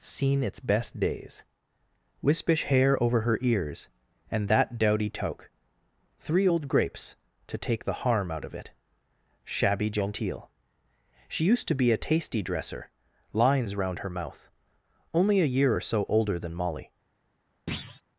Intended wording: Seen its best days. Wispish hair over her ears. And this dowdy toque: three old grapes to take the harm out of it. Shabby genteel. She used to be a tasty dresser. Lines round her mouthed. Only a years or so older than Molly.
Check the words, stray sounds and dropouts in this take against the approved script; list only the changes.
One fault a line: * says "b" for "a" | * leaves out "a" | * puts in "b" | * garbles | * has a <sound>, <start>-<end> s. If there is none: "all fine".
* says "that" for "this"
* says "mouth" for "mouthed"
* says "year" for "years"
* has a thud, 17.7-18.0 s